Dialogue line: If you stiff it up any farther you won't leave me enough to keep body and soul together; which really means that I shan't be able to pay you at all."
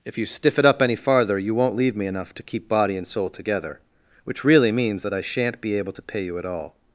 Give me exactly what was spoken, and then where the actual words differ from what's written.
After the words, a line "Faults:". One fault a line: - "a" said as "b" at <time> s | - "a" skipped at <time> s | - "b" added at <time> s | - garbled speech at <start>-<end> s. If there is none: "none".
If you stiff it up any farther you won't leave me enough to keep body and soul together; which really means that I shan't be able to pay you at all."
Faults:
none